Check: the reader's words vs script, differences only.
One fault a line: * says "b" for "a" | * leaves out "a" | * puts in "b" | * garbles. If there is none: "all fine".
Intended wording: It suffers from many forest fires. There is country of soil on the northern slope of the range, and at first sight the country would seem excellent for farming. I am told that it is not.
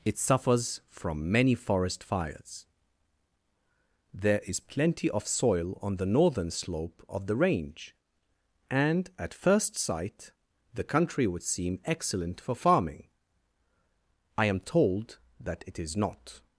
* says "plenty" for "country"